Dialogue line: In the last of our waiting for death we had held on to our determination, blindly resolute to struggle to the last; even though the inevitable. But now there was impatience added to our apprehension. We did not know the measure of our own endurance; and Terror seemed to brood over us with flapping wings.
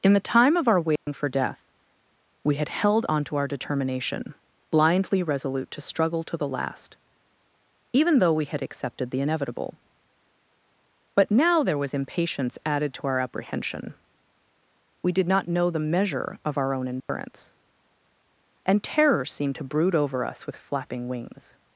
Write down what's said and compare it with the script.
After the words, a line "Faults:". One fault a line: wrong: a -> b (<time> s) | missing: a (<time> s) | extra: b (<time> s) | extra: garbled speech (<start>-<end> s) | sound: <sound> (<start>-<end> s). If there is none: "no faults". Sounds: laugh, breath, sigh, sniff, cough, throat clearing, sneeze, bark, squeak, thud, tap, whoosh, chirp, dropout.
In the time of our waiting for death we had held on to our determination, blindly resolute to struggle to the last; even though we had accepted the inevitable. But now there was impatience added to our apprehension. We did not know the measure of our own endurance; and Terror seemed to brood over us with flapping wings.
Faults:
wrong: last -> time (0.3 s)
sound: dropout (1.0-1.1 s)
extra: we had accepted (8.3 s)
sound: dropout (17.0-17.1 s)